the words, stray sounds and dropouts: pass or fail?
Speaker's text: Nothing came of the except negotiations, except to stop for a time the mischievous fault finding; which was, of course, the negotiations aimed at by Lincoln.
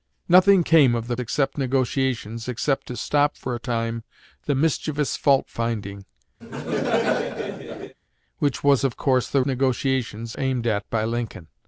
fail